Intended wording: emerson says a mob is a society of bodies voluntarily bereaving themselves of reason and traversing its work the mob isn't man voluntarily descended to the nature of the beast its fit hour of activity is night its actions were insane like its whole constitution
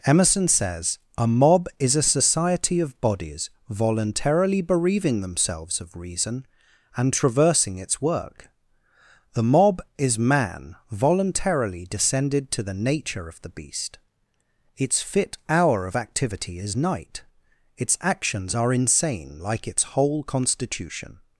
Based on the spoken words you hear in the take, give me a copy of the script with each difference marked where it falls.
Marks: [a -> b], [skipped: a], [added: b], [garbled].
emerson says a mob is a society of bodies voluntarily bereaving themselves of reason and traversing its work the mob [isn't -> is] man voluntarily descended to the nature of the beast its fit hour of activity is night its actions [were -> are] insane like its whole constitution